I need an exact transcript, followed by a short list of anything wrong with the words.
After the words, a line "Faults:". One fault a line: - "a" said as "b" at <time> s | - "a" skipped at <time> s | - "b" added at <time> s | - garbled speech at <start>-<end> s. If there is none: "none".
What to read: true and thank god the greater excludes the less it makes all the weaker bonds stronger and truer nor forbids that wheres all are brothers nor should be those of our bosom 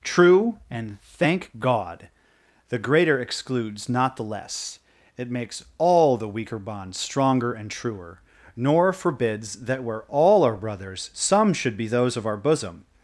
true and thank god the greater excludes not the less it makes all the weaker bonds stronger and truer nor forbids that where all are brothers some should be those of our bosom
Faults:
- "not" added at 3.9 s
- "wheres" said as "where" at 9.8 s
- "nor" said as "some" at 11.1 s